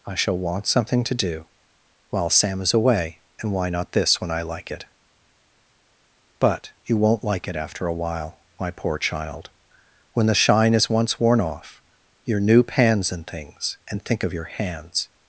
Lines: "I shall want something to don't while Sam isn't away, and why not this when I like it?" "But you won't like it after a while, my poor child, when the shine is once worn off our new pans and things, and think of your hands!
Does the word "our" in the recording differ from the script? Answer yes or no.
yes